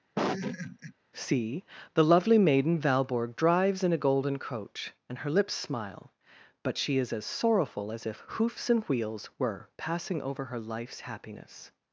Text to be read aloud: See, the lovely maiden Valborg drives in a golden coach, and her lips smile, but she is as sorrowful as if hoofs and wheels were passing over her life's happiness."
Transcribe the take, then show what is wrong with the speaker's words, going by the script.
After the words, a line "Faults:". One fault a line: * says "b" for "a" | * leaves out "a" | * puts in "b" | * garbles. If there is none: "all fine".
See, the lovely maiden Valborg drives in a golden coach, and her lips smile, but she is as sorrowful as if hoofs and wheels were passing over her life's happiness."
Faults:
all fine